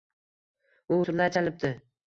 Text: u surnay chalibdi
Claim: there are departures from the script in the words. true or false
false